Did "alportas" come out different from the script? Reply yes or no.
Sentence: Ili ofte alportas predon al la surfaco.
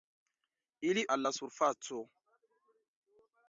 yes